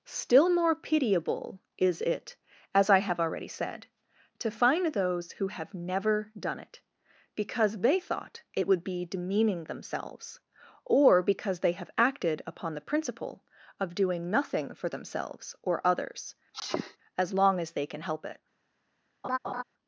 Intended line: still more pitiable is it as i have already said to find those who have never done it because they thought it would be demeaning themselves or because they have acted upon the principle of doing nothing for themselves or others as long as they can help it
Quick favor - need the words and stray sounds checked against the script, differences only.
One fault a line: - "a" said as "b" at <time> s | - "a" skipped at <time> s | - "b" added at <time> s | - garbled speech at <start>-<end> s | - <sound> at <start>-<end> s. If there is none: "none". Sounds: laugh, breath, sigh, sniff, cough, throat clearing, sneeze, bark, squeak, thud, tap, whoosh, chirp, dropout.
- sneeze at 16.5-17.0 s
- laugh at 19.2-19.6 s